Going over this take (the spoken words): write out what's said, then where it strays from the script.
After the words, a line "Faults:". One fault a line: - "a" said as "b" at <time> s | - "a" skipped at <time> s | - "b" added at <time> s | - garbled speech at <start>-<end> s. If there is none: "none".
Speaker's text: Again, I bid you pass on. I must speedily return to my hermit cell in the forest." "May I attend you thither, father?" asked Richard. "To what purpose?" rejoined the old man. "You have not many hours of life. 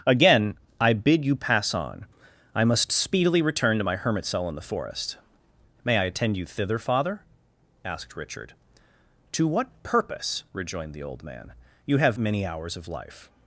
Again, I bid you pass on. I must speedily return to my hermit cell in the forest." "May I attend you thither, father?" asked Richard. "To what purpose?" rejoined the old man. "You have many hours of life.
Faults:
- "not" skipped at 12.2 s